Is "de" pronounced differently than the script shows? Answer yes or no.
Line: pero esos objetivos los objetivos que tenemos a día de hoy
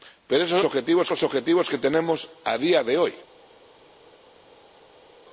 no